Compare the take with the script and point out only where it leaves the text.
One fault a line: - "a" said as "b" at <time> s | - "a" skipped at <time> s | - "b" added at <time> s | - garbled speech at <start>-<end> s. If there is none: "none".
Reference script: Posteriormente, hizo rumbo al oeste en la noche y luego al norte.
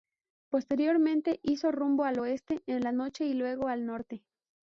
none